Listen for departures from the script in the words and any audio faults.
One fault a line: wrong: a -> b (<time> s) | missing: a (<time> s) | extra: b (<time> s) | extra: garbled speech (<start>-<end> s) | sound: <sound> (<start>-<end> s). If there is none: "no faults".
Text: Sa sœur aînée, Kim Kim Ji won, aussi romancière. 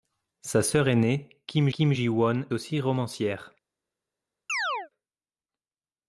sound: chirp (4.5-4.9 s)